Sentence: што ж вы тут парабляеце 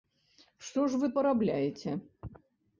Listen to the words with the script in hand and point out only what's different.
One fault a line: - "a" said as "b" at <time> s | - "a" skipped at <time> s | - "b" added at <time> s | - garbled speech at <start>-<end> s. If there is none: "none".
- "тут" skipped at 1.1 s